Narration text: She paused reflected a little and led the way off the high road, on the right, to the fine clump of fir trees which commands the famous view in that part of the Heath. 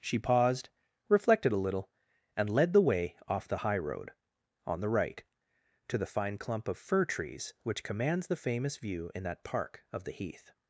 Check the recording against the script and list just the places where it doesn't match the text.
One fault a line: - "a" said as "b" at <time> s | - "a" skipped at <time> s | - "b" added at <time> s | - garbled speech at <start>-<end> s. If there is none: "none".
- "part" said as "park" at 9.4 s